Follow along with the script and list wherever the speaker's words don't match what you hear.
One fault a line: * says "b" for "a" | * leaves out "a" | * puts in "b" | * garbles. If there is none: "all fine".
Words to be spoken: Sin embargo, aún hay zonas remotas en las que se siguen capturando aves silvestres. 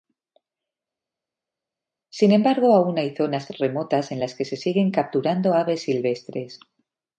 all fine